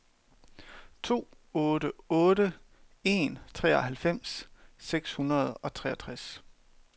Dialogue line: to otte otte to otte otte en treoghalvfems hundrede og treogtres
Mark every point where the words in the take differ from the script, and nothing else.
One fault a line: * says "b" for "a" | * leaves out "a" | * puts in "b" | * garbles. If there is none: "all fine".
* leaves out "to otte otte"
* puts in "seks"